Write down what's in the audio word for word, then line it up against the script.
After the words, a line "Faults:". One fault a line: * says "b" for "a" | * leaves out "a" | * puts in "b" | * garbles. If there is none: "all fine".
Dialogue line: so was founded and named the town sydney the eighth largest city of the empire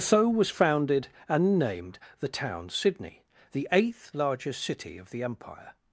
so was founded and named the town sydney the eighth largest city of the empire
Faults:
all fine